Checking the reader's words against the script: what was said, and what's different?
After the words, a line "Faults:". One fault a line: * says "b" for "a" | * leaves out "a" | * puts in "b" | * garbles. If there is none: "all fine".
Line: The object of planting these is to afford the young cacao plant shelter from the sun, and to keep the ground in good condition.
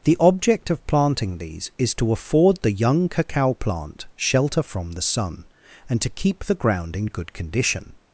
The object of planting these is to afford the young cacao plant shelter from the sun, and to keep the ground in good condition.
Faults:
all fine